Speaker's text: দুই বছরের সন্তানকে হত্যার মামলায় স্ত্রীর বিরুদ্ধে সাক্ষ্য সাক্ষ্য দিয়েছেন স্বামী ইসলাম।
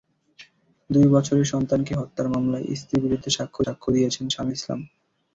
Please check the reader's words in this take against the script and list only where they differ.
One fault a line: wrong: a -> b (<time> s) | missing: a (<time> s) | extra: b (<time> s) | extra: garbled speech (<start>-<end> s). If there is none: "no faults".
no faults